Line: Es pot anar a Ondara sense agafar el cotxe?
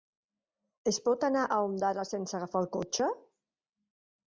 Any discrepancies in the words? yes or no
no